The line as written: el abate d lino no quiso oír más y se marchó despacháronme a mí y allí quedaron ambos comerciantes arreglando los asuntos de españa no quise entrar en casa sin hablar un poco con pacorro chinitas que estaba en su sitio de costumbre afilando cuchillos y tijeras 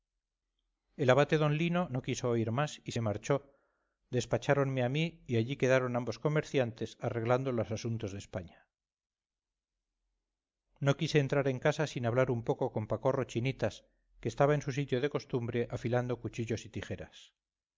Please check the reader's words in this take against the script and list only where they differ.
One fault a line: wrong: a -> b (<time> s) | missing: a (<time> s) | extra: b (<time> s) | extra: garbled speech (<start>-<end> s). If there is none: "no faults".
no faults